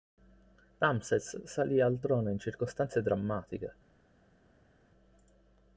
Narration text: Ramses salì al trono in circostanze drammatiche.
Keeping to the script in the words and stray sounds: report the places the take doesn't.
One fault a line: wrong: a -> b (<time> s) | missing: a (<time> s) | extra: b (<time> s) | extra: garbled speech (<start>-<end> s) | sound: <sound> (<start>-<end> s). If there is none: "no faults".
no faults